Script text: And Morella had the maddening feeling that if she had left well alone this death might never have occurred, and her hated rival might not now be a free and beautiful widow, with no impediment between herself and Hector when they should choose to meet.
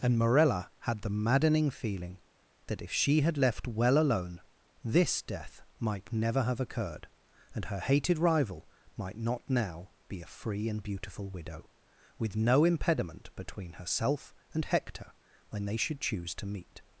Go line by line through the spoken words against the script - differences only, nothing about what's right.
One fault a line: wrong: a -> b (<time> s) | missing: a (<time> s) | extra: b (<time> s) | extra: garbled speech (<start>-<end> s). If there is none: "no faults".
no faults